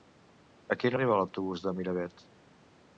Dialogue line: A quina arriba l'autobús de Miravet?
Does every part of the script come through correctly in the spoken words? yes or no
yes